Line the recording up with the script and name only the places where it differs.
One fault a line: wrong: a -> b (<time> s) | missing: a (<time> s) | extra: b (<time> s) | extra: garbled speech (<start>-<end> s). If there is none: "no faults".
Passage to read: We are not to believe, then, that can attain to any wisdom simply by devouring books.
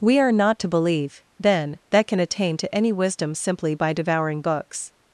no faults